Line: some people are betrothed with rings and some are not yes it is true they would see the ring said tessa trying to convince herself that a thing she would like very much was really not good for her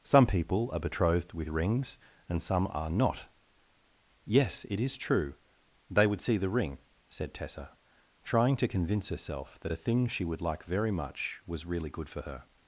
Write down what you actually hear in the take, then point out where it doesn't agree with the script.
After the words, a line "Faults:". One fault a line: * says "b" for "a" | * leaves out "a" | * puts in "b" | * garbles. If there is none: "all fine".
some people are betrothed with rings and some are not yes it is true they would see the ring said tessa trying to convince herself that a thing she would like very much was really good for her
Faults:
* leaves out "not"